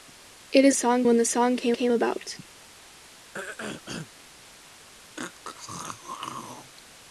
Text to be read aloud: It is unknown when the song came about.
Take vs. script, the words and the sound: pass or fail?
fail